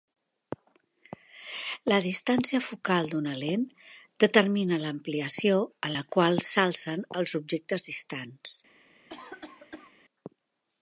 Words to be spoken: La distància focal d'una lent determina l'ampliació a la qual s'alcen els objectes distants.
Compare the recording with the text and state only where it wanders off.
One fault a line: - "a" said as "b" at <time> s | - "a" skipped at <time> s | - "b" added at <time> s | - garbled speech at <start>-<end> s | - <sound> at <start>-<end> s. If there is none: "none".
- cough at 9.1-9.9 s